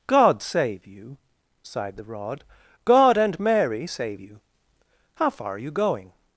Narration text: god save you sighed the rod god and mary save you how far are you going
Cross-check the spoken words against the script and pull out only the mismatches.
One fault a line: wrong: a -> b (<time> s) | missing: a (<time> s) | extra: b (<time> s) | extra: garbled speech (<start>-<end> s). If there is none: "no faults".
no faults